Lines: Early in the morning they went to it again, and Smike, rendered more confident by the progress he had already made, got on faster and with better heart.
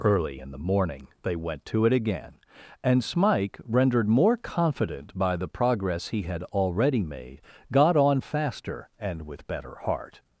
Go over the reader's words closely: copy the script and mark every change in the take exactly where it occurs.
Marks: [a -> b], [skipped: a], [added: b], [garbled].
Early in the morning they went to it again, and Smike, rendered more confident by the progress he had already made, got on faster and with better heart.